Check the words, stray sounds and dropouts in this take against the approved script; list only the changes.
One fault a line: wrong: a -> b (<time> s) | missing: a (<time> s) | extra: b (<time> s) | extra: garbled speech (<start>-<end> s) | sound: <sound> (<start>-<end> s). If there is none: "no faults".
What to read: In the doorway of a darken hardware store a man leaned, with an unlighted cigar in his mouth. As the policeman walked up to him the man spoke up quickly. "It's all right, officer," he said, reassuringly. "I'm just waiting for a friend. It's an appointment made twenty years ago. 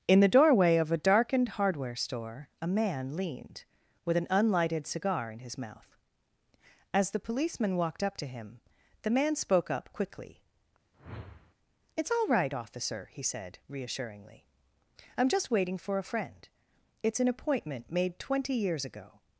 wrong: darken -> darkened (1.0 s)
sound: whoosh (10.9-11.5 s)